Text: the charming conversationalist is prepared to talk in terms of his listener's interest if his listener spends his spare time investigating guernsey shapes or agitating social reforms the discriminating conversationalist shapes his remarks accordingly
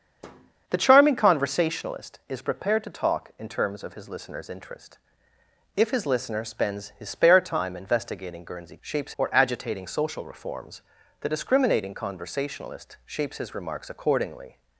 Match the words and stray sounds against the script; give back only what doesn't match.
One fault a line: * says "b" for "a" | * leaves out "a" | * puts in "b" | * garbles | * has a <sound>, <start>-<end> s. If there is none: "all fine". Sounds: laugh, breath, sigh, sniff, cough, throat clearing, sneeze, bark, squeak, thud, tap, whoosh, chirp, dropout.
* has a thud, 0.2-0.5 s